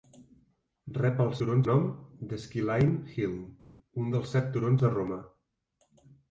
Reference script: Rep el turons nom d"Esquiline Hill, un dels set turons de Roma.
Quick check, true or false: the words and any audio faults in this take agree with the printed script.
true